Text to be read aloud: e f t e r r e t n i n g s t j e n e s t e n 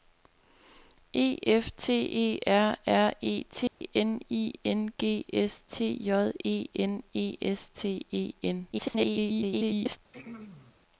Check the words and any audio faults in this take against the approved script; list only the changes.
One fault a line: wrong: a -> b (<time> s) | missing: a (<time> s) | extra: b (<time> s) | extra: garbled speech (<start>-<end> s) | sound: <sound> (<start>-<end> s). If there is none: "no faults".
sound: dropout (3.7-3.8 s)
extra: garbled speech (8.7-10.0 s)
sound: throat clearing (10.1-10.7 s)